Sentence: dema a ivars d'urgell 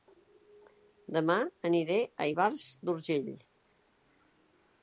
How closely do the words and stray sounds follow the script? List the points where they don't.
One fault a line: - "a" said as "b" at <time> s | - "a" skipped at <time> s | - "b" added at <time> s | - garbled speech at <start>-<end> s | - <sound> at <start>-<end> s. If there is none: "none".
- "aniré" added at 1.7 s